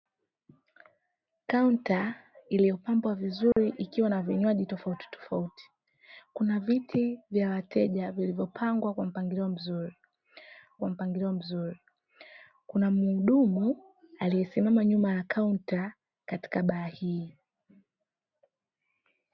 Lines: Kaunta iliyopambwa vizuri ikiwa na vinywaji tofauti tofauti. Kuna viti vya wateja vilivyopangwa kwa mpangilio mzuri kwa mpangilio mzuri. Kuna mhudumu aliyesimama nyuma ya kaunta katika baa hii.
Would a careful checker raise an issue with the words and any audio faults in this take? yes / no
yes